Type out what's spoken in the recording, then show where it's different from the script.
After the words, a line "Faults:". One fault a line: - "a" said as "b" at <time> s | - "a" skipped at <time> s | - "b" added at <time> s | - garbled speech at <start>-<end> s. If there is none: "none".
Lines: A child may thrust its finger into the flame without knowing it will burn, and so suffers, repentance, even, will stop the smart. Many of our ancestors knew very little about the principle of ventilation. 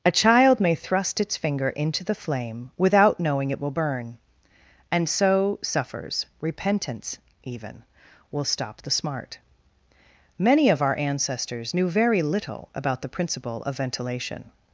A child may thrust its finger into the flame without knowing it will burn, and so suffers, repentance, even, will stop the smart. Many of our ancestors knew very little about the principle of ventilation.
Faults:
none